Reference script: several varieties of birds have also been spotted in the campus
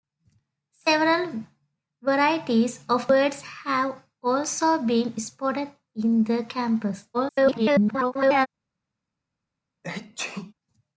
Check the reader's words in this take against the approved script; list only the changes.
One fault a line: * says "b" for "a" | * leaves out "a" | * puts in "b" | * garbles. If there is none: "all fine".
* garbles